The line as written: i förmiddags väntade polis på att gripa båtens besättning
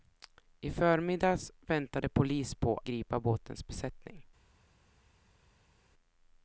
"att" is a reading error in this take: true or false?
true